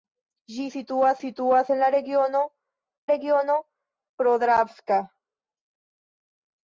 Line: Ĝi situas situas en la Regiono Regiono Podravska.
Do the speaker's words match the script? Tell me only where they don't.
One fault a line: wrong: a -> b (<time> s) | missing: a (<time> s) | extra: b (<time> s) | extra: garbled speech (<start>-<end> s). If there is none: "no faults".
no faults